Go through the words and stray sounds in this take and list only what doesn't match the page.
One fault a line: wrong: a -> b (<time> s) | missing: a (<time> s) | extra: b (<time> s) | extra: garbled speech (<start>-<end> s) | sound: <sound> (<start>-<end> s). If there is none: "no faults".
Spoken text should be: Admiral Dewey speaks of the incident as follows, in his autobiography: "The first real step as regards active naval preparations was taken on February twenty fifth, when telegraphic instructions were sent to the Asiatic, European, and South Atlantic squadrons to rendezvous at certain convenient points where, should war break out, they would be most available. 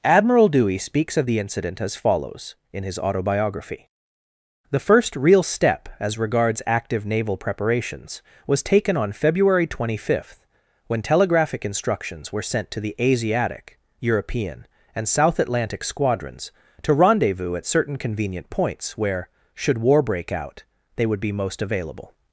no faults